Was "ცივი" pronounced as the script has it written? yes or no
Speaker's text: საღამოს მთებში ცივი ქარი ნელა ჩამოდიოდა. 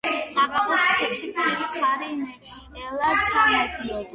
yes